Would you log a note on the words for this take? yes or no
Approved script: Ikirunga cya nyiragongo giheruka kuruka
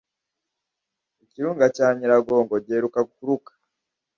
no